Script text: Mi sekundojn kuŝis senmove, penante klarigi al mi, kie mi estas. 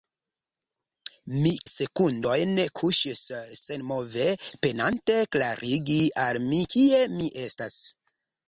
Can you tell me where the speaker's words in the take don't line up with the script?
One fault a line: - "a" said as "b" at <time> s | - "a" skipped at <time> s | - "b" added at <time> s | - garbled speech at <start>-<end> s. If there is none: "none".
none